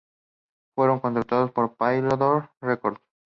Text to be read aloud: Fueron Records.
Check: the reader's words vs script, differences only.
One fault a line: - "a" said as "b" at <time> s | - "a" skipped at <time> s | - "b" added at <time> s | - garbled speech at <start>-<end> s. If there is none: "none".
- "contratados por Polydor" added at 1.0 s